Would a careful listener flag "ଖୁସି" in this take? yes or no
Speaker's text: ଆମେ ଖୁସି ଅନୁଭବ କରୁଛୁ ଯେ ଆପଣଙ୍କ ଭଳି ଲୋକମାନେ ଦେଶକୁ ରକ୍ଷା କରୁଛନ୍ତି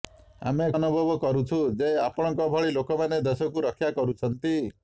yes